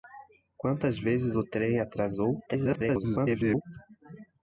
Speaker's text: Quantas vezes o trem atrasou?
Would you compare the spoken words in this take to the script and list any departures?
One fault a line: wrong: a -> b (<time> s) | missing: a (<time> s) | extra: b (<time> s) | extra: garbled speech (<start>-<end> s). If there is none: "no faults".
extra: garbled speech (2.5-3.6 s)